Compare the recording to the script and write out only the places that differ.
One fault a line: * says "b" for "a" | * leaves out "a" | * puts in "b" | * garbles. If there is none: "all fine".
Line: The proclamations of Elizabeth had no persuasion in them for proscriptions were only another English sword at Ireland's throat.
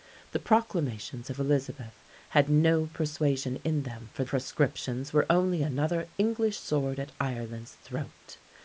all fine